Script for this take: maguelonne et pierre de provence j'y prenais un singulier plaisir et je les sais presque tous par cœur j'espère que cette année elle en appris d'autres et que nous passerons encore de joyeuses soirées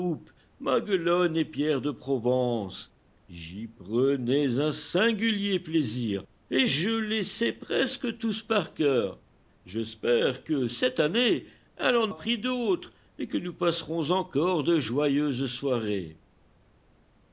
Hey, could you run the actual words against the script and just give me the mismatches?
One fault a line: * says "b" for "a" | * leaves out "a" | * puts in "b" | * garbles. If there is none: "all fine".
all fine